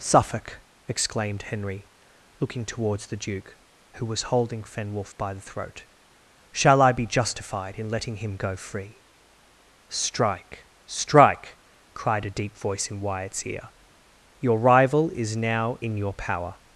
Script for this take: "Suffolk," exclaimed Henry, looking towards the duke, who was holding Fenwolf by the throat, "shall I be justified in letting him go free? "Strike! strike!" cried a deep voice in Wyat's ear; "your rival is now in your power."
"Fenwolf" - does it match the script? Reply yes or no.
yes